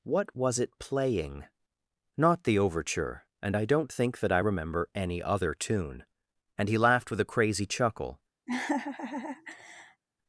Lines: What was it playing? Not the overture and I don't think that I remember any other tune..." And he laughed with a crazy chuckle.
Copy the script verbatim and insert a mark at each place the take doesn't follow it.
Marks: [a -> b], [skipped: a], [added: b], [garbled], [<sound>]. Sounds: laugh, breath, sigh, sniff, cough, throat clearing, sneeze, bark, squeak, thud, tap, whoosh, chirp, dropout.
What was it playing? Not the overture and I don't think that I remember any other tune..." And he laughed with a crazy chuckle. [laugh]